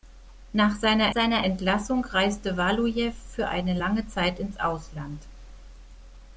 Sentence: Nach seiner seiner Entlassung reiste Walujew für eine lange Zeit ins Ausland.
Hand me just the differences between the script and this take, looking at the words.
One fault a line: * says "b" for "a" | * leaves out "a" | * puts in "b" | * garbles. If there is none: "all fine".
all fine